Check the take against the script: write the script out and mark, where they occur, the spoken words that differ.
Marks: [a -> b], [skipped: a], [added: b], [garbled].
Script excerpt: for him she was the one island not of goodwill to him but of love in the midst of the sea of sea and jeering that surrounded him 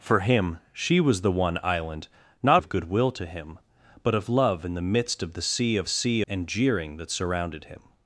for him she was the one island not of goodwill to him but of love in the midst of the sea of sea and jeering that surrounded him